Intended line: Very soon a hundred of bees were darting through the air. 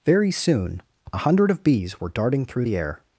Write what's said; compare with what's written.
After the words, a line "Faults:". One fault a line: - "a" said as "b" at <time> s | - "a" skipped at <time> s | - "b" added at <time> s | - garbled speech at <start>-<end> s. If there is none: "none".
Very soon a hundred of bees were darting through the air.
Faults:
none